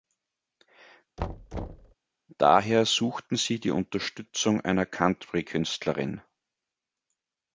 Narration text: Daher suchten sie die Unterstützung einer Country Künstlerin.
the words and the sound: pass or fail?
fail